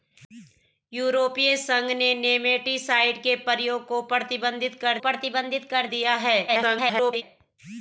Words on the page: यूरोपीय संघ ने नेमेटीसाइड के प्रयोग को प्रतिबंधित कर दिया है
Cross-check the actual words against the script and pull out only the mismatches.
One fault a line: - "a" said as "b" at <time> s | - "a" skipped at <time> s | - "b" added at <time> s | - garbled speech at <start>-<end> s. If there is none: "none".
- "प्रतिबंधित कर" added at 5.0 s
- garbled speech at 6.5-7.2 s